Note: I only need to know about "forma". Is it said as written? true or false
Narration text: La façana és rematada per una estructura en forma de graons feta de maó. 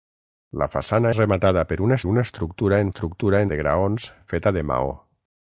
false